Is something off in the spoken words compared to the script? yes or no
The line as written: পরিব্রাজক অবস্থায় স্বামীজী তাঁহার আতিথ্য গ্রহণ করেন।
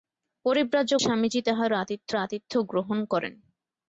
yes